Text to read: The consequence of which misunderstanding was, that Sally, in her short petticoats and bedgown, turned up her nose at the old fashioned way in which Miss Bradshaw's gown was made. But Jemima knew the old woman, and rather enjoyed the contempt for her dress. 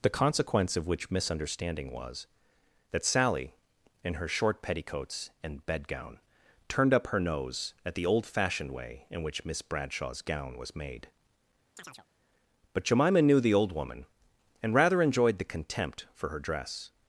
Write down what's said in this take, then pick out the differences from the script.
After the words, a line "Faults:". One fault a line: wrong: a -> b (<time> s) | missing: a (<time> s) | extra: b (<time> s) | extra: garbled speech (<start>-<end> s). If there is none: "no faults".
The consequence of which misunderstanding was, that Sally, in her short petticoats and bedgown, turned up her nose at the old fashioned way in which Miss Bradshaw's gown was made. But Jemima knew the old woman, and rather enjoyed the contempt for her dress.
Faults:
no faults